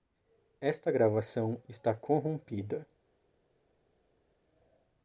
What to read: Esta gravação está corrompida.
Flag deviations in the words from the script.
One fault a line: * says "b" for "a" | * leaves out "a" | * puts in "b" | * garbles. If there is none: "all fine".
all fine